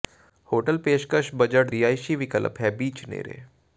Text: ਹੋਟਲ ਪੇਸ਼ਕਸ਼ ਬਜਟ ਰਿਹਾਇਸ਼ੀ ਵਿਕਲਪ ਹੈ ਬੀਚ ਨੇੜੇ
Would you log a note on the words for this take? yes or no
no